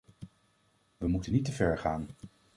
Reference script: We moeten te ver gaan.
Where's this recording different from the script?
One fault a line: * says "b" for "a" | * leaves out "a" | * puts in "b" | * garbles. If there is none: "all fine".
* puts in "niet"